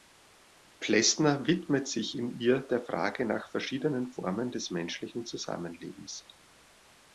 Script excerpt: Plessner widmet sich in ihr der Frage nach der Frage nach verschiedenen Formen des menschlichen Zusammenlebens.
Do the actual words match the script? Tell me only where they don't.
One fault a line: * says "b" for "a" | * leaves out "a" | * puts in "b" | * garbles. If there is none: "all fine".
* leaves out "der Frage nach"